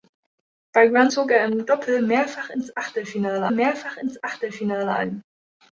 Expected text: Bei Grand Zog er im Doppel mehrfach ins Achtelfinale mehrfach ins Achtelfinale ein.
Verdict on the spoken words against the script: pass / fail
pass